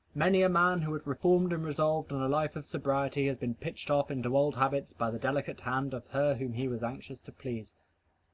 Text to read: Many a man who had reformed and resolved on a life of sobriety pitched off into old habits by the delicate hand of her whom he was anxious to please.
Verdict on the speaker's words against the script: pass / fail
fail